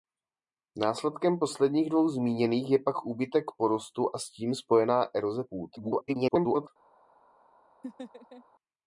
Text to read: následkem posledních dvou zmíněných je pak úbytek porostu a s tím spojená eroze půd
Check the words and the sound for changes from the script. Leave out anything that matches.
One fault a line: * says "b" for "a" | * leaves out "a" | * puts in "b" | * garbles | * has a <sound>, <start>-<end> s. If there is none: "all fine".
* garbles
* has a laugh, 7.8-8.4 s